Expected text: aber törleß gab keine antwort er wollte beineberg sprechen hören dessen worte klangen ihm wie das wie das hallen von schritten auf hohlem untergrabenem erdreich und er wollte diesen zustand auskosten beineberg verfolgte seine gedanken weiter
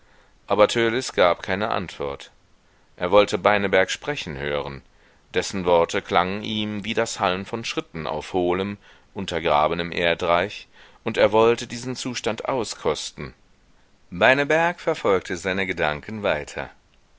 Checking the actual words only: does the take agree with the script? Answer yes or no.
no